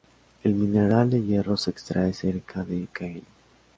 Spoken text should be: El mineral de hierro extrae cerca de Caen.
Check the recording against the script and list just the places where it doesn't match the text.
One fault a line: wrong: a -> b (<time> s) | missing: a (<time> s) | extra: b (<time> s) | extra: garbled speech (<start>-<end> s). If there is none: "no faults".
extra: se (1.6 s)